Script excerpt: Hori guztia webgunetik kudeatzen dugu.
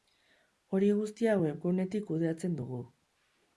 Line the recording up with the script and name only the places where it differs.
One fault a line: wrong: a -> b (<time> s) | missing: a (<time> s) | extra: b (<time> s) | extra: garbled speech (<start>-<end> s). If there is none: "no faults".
no faults